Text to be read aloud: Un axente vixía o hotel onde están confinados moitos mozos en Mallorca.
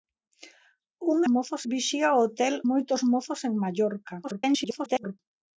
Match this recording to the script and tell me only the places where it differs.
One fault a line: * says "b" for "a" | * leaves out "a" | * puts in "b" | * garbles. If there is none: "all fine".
* says "mozos" for "axente"
* leaves out "onde están confinados"
* garbles